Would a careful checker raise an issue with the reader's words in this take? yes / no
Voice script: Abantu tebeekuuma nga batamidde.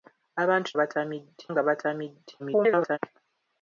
yes